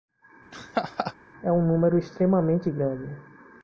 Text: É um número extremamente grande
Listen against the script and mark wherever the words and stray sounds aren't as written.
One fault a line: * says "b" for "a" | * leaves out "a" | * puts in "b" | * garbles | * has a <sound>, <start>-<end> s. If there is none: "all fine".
* has a laugh, 0.5-1.1 s